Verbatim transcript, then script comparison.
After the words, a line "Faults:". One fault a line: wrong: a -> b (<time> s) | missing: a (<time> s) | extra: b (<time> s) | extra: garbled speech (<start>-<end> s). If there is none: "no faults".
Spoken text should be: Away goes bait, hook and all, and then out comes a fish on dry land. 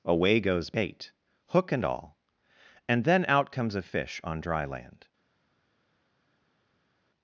Away goes bait, hook and all, and then out comes a fish on dry land.
Faults:
no faults